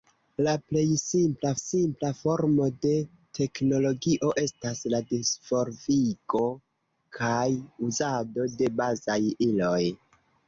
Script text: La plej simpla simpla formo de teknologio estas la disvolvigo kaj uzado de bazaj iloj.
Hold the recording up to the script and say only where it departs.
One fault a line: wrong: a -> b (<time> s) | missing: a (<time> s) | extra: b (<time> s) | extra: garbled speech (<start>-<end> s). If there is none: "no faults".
no faults